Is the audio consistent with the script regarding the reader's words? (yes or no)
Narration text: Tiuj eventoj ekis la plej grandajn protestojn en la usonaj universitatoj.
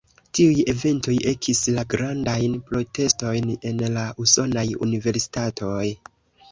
no